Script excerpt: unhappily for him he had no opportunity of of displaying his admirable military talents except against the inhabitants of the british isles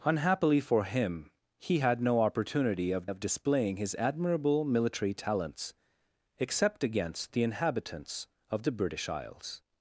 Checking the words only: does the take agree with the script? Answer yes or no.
yes